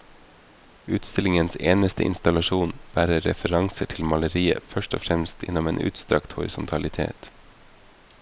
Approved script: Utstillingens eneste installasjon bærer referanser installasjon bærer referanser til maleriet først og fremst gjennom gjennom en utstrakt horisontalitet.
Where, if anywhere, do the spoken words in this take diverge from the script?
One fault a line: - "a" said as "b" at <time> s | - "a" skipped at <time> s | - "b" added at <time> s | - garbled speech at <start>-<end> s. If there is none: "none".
- "installasjon bærer referanser" skipped at 3.9 s
- "gjennom" skipped at 5.7 s